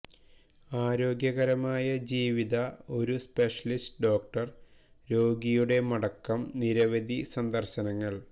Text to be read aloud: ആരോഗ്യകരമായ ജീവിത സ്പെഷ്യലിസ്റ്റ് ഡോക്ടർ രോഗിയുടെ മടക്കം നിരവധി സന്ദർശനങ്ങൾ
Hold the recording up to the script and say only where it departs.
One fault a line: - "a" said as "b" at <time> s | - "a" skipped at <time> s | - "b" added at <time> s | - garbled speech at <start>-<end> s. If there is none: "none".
- "ഒരു" added at 3.0 s